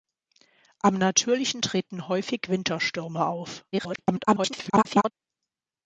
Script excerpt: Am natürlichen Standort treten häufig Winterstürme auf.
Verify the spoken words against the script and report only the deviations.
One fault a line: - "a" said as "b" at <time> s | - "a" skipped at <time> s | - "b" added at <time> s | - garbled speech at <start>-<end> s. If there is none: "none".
- "Standort" skipped at 1.6 s
- garbled speech at 3.7-5.1 s